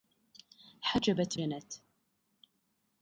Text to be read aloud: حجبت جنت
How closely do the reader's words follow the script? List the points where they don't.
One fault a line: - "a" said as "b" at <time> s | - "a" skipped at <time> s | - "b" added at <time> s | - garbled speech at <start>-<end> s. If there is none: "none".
none